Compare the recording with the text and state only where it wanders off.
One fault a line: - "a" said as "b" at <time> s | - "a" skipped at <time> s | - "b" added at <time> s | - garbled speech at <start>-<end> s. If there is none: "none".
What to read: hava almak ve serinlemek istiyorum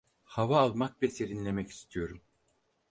none